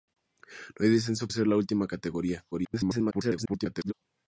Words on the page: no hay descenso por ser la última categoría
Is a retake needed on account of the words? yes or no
yes